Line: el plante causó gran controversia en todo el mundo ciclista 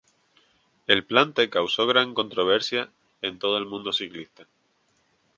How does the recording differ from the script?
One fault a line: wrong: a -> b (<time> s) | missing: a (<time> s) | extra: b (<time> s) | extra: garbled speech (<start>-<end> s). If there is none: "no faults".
no faults